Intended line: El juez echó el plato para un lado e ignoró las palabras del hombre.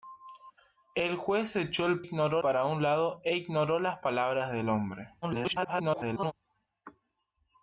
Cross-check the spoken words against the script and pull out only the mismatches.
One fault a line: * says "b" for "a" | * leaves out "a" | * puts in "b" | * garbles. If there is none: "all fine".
* says "ignoró" for "plato"
* garbles